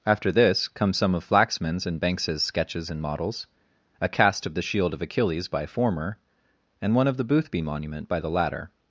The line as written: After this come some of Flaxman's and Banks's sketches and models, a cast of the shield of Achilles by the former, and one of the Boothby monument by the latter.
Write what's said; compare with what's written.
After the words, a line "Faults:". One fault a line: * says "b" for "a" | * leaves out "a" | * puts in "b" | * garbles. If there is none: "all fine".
After this come some of Flaxman's and Banks's sketches and models, a cast of the shield of Achilles by former, and one of the Boothby monument by the latter.
Faults:
* leaves out "the"